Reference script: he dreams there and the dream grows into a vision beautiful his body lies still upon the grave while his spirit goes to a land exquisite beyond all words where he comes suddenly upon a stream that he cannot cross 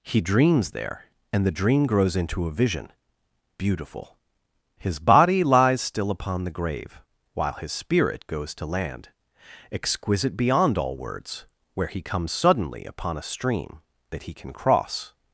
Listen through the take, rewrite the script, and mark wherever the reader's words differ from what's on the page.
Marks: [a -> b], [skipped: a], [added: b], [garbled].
he dreams there and the dream grows into a vision beautiful his body lies still upon the grave while his spirit goes to [skipped: a] land exquisite beyond all words where he comes suddenly upon a stream that he [cannot -> can] cross